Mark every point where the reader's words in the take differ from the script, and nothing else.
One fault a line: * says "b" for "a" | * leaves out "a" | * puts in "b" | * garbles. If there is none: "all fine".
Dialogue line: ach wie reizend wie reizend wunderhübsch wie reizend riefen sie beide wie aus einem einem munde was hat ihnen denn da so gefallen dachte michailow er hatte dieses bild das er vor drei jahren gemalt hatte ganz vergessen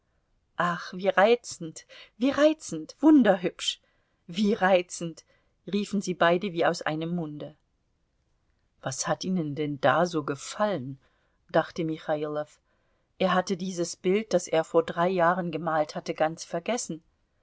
* leaves out "einem"